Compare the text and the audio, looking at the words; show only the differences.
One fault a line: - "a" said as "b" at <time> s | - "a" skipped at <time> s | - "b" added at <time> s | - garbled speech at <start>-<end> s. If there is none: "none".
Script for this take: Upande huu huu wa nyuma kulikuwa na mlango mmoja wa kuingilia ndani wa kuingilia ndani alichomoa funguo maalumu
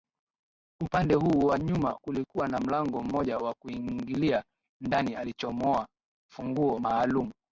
- "huu" skipped at 1.4 s
- "wa kuingilia ndani" skipped at 5.2 s